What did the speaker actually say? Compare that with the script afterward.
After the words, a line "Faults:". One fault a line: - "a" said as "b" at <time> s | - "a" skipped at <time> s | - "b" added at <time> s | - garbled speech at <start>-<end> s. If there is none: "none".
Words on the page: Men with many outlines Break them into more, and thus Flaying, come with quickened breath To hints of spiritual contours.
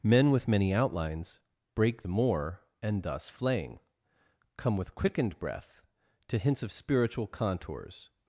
Men with many outlines Break more, and thus Flaying, come with quickened breath To hints of spiritual contours.
Faults:
- "them into" skipped at 2.0 s